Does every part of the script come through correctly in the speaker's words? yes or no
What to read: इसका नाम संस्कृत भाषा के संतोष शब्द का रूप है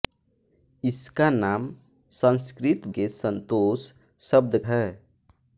no